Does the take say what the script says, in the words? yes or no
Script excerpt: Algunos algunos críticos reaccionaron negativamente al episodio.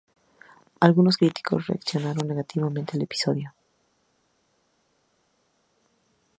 no